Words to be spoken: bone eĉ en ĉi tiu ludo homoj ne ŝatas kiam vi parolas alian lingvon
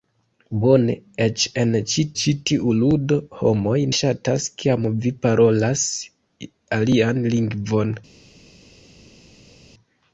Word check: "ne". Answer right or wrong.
wrong